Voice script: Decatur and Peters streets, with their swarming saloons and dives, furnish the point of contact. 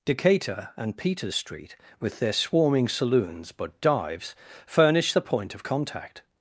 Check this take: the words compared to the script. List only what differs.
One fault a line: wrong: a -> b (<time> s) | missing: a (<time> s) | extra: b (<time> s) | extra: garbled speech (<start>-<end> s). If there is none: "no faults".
wrong: streets -> street (1.3 s)
wrong: and -> but (3.5 s)